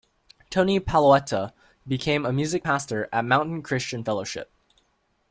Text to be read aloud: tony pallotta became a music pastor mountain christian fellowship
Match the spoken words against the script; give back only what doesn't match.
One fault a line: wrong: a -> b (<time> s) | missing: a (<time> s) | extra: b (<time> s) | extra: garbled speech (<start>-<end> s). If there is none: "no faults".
extra: at (3.1 s)